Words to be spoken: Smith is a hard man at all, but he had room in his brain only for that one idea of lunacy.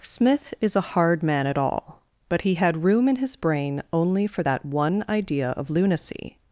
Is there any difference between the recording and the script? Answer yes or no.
no